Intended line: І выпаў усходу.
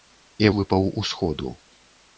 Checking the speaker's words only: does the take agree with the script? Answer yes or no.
yes